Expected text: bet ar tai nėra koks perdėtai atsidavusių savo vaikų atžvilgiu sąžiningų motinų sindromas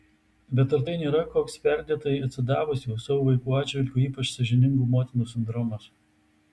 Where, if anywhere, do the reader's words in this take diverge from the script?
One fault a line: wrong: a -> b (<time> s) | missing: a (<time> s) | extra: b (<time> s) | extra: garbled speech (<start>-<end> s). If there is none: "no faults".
extra: ypač (4.1 s)